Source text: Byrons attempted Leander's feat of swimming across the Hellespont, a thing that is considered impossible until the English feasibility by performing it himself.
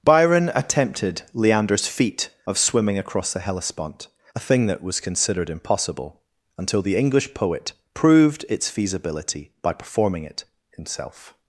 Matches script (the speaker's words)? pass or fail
fail